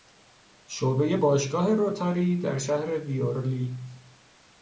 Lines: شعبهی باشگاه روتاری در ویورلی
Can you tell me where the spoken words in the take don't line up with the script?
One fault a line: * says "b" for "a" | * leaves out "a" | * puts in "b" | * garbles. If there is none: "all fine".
* puts in "شهر"